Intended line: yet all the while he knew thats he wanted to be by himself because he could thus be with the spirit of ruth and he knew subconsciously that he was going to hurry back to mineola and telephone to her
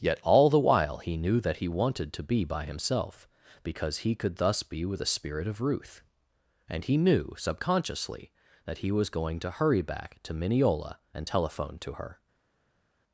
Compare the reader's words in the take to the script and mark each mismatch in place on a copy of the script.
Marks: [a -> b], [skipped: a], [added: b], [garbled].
yet all the while he knew [thats -> that] he wanted to be by himself because he could thus be with the spirit of ruth and he knew subconsciously that he was going to hurry back to mineola and telephone to her